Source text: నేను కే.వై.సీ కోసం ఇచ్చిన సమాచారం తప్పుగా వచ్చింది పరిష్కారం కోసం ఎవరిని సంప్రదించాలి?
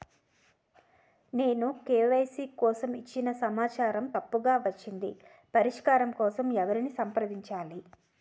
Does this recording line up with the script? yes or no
yes